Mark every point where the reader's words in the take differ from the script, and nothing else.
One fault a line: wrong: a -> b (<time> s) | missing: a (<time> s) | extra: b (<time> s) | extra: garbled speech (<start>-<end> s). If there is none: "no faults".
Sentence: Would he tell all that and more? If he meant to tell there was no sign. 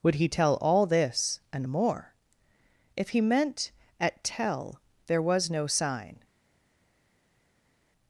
wrong: that -> this (0.8 s)
wrong: to -> at (4.0 s)